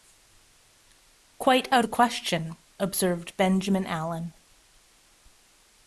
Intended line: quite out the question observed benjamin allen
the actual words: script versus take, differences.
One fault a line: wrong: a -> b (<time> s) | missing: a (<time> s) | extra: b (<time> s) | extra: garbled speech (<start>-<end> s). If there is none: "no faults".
no faults